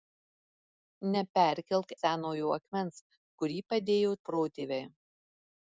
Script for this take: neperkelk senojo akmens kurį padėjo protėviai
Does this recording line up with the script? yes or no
yes